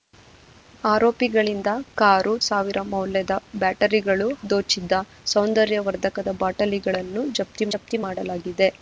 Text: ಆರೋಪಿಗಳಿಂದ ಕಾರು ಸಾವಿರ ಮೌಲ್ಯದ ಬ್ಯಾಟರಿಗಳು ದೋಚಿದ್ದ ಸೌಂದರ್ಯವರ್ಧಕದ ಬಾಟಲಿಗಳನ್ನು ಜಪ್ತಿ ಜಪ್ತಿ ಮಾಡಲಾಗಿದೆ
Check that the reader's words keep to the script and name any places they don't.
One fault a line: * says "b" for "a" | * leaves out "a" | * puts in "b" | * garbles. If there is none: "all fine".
all fine